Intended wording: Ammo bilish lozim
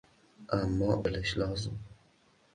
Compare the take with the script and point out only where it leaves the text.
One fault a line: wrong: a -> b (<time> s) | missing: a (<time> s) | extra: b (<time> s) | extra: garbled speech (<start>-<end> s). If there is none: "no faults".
no faults